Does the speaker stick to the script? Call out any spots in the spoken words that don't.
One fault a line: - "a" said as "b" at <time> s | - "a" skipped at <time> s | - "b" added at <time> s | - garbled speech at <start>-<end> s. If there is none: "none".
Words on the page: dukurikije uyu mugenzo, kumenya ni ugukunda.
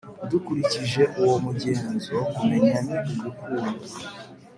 - "uyu" said as "uwo" at 1.2 s